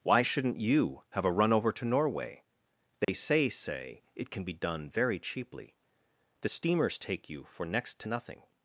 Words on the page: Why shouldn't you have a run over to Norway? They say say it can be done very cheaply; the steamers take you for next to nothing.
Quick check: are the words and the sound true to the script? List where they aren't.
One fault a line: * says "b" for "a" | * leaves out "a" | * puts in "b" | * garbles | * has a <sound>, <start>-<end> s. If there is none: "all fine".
* has a dropout, 3.0-3.1 s